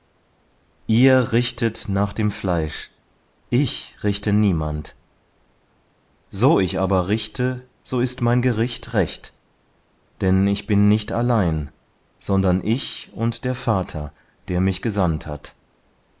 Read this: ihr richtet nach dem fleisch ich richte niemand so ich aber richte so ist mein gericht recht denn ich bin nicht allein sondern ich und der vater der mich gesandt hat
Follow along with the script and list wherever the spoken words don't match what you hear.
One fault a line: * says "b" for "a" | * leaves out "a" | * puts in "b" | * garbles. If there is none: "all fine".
all fine